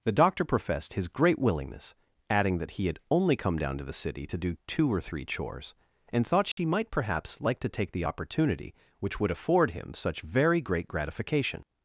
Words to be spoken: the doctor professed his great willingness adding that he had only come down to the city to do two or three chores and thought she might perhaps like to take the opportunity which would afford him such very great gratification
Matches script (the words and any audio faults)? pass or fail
fail